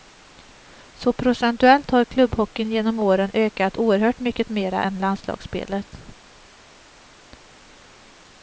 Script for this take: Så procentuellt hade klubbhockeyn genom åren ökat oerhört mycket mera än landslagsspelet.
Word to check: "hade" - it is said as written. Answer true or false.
false